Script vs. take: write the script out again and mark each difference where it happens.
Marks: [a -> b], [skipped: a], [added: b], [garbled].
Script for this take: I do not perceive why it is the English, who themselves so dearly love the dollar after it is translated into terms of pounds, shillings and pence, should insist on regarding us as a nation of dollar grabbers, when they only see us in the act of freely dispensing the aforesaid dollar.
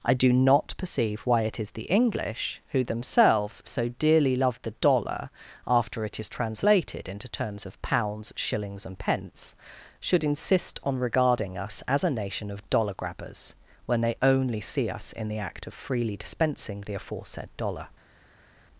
I do not perceive why it is the English, who themselves so dearly love the dollar after it is translated into terms of pounds, shillings and pence, should insist on regarding us as a nation of dollar grabbers, when they only see us in the act of freely dispensing the aforesaid dollar.